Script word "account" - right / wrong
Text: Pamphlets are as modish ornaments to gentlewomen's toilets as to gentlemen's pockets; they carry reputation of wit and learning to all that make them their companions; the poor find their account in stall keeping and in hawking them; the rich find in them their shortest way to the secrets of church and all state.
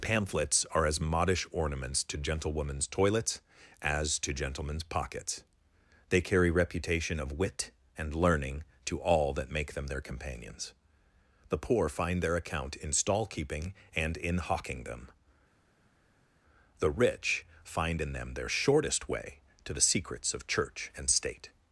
right